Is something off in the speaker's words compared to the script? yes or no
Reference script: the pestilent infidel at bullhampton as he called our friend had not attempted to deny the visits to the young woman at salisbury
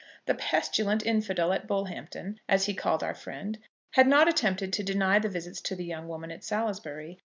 no